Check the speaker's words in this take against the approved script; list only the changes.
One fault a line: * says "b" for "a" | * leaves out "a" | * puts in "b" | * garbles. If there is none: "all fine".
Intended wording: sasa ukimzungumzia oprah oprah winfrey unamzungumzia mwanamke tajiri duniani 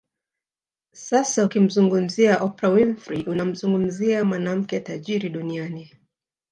* leaves out "oprah"